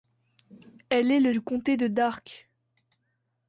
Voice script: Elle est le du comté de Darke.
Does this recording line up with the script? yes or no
yes